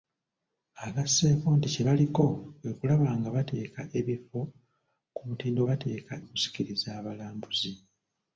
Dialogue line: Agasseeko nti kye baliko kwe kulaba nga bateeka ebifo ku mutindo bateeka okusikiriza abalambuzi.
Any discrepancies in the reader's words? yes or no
no